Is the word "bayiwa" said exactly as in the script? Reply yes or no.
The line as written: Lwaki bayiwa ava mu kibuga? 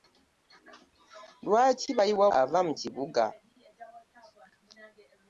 yes